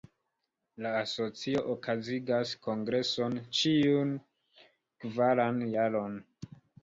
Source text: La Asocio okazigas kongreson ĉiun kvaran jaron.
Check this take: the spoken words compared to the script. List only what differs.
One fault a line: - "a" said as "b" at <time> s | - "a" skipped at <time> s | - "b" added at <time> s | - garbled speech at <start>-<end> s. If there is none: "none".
none